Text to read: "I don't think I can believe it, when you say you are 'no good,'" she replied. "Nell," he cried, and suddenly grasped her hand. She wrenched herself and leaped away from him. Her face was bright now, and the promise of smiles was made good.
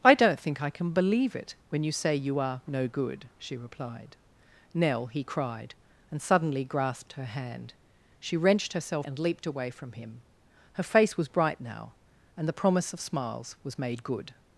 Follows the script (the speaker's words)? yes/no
yes